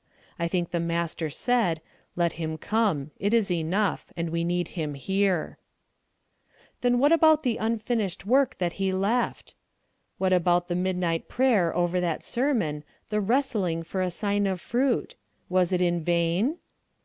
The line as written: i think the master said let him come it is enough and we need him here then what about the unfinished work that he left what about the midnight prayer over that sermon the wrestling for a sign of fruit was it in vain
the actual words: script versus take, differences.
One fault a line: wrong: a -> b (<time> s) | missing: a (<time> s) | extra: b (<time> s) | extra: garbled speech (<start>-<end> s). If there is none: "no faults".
no faults